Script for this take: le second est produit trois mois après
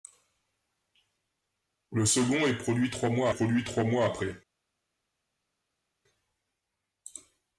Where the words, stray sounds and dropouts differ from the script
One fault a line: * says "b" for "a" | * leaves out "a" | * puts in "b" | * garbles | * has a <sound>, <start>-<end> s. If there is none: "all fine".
* puts in "produit trois mois"